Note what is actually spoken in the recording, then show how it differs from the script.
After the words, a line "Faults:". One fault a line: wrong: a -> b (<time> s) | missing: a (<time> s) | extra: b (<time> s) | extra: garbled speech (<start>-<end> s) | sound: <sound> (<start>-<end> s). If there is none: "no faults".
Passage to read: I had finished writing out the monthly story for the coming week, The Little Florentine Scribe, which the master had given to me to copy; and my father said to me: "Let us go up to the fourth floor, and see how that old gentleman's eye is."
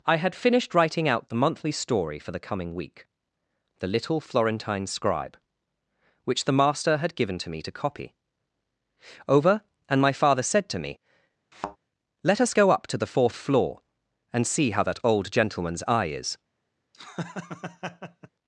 I had finished writing out the monthly story for the coming week, The Little Florentine Scribe, which the master had given to me to copy; over and my father said to me: "Let us go up to the fourth floor, and see how that old gentleman's eye is."
Faults:
extra: over (9.3 s)
sound: thud (11.5-11.8 s)
sound: laugh (16.9-18.3 s)